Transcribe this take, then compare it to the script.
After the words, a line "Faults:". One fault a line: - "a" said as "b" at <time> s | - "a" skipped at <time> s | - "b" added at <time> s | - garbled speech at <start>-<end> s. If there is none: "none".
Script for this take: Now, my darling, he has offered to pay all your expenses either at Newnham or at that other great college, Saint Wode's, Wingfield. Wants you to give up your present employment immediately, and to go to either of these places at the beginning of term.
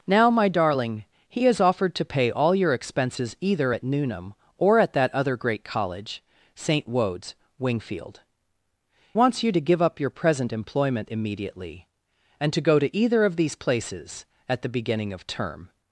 Now, my darling, he has offered to pay all your expenses either at Newnham or at that other great college, Saint Wode's, Wingfield. Wants you to give up your present employment immediately, and to go to either of these places at the beginning of term.
Faults:
none